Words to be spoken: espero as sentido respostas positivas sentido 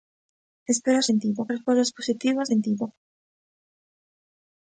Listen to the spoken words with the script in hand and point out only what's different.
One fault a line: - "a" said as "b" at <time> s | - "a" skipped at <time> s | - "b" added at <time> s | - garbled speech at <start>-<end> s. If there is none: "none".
none